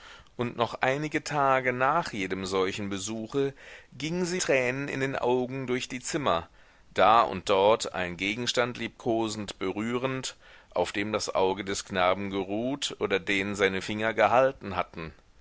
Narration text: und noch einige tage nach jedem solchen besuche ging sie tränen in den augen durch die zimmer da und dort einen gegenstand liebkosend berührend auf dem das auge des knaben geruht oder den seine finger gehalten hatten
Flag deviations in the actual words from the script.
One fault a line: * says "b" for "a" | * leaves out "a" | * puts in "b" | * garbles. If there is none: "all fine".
all fine